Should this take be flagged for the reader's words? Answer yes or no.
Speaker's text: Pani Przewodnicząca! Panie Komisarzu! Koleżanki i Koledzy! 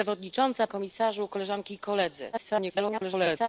yes